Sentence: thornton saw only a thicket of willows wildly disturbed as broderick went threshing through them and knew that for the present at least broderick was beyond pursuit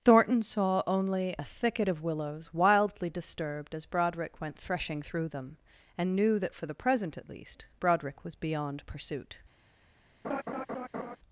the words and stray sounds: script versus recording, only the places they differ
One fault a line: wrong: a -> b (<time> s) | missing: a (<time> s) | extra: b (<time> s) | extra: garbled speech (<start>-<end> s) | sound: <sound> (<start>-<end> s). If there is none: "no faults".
sound: laugh (10.2-11.2 s)